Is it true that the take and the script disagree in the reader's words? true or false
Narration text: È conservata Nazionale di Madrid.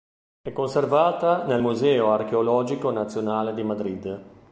true